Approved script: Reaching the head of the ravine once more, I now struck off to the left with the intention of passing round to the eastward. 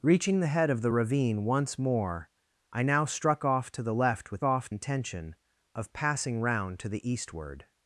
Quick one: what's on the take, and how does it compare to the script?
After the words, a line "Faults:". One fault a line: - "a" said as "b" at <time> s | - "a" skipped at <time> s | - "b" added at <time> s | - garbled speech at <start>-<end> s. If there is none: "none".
Reaching the head of the ravine once more, I now struck off to the left with off intention of passing round to the eastward.
Faults:
- "the" said as "off" at 4.4 s